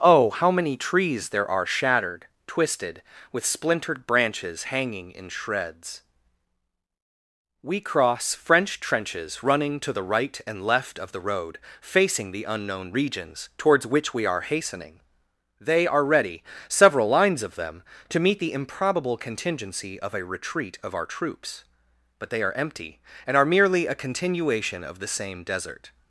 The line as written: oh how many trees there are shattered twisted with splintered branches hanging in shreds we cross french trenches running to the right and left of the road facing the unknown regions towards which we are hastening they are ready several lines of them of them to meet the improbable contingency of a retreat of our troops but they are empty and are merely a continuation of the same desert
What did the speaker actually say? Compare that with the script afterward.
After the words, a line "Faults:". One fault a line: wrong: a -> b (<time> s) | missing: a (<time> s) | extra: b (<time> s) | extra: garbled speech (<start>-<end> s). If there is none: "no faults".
oh how many trees there are shattered twisted with splintered branches hanging in shreds we cross french trenches running to the right and left of the road facing the unknown regions towards which we are hastening they are ready several lines of them to meet the improbable contingency of a retreat of our troops but they are empty and are merely a continuation of the same desert
Faults:
missing: of them (17.8 s)